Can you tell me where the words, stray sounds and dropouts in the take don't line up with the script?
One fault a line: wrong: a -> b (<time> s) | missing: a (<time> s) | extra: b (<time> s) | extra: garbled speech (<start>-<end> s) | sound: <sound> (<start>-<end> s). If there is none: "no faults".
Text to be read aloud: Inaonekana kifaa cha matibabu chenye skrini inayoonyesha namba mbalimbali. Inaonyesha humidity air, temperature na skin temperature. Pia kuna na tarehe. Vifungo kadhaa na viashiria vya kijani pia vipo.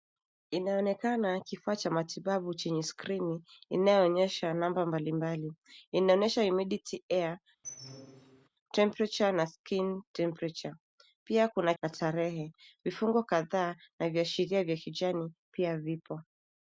sound: squeak (7.6-8.5 s)